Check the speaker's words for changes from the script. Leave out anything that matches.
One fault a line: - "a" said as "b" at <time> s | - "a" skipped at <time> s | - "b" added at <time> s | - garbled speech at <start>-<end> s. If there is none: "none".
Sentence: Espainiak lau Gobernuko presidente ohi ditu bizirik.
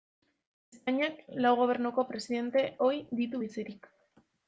none